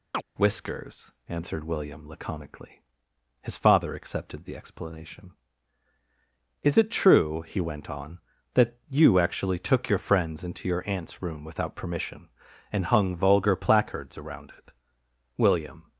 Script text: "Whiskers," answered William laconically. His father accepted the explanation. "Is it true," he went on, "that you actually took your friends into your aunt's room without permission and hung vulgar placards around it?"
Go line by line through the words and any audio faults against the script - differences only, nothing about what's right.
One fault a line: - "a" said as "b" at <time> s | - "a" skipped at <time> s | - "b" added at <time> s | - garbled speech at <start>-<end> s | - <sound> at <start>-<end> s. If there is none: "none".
- chirp at 0.1-0.2 s
- "William" added at 15.4 s